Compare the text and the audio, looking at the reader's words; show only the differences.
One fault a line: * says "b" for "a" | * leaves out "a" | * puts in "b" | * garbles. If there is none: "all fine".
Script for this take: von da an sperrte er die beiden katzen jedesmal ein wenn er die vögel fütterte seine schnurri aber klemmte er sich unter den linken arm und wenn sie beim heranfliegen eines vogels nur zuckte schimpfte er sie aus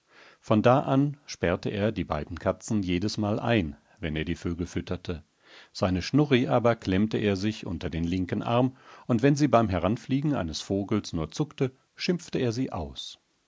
all fine